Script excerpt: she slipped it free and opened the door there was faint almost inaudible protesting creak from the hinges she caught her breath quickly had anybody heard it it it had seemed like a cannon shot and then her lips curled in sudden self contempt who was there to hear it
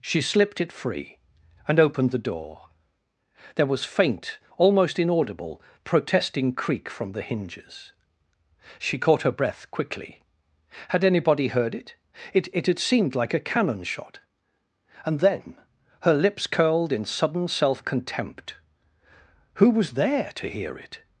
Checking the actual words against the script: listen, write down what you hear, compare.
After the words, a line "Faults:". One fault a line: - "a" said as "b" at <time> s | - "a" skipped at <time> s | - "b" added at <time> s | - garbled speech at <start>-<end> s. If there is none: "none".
she slipped it free and opened the door there was faint almost inaudible protesting creak from the hinges she caught her breath quickly had anybody heard it it it had seemed like a cannon shot and then her lips curled in sudden self contempt who was there to hear it
Faults:
none